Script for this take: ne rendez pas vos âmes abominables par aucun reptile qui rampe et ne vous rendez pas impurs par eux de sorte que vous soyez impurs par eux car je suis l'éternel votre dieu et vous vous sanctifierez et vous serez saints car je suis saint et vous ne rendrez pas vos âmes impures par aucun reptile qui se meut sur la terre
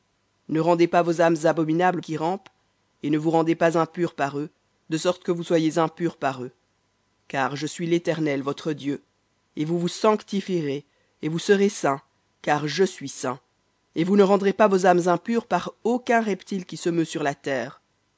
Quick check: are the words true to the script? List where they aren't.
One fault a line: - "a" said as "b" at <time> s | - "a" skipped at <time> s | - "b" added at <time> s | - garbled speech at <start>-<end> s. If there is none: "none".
- "par aucun reptile" skipped at 2.0 s